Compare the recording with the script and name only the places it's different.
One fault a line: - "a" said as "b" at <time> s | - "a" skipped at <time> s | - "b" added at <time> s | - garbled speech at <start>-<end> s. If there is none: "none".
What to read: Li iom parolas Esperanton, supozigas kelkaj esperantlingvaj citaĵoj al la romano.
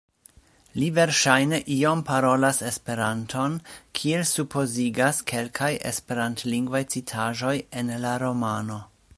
- "verŝajne" added at 0.9 s
- "kiel" added at 4.0 s
- "al" said as "en" at 7.8 s